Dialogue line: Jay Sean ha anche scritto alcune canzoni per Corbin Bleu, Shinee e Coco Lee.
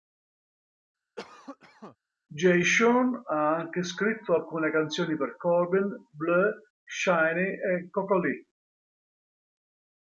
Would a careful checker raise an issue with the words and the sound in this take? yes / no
yes